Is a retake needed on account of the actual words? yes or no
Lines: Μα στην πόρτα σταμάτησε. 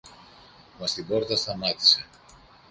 no